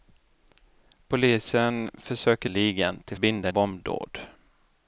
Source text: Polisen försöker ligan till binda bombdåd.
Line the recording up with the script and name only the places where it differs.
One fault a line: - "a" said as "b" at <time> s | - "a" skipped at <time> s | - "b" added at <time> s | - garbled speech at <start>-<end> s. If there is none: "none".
none